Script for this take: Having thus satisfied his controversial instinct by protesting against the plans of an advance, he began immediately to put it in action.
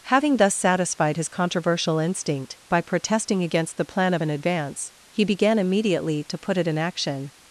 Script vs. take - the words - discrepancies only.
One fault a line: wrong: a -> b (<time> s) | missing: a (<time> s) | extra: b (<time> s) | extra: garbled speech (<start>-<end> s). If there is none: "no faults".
wrong: plans -> plan (3.8 s)